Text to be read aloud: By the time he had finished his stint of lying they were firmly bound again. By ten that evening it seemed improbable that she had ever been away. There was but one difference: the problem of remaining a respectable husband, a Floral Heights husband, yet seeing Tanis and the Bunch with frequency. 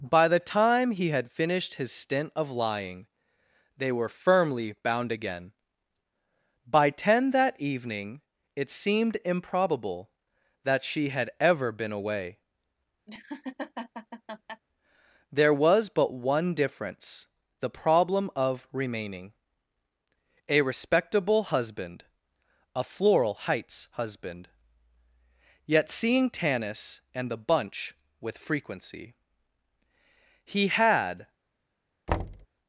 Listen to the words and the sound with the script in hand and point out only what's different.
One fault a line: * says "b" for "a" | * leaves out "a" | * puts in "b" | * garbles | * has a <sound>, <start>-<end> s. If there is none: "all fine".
* has a laugh, 13.1-14.6 s
* puts in "He had"
* has a thud, 32.1-32.5 s